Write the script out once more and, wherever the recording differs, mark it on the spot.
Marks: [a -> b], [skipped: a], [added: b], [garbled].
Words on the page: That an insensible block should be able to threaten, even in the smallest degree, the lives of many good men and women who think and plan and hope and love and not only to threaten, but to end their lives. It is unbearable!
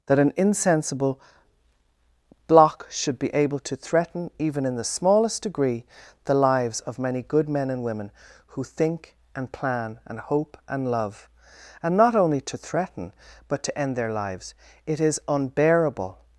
That an insensible block should be able to threaten, even in the smallest degree, the lives of many good men and women who think and plan and hope and love and not only to threaten, but to end their lives. It is unbearable!